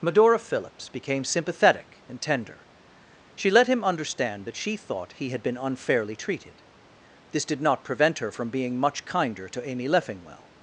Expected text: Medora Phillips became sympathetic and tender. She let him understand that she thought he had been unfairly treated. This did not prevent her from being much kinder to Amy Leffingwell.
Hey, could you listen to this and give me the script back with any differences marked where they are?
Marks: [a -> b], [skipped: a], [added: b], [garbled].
Medora Phillips became sympathetic and tender. She let him understand that she thought he had been unfairly treated. This did not prevent her from being much kinder to Amy Leffingwell.